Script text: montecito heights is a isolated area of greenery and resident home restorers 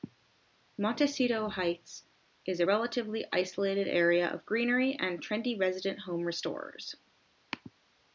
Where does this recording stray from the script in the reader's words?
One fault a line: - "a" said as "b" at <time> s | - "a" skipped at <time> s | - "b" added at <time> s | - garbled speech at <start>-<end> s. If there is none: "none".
- "relatively" added at 2.6 s
- "trendy" added at 5.2 s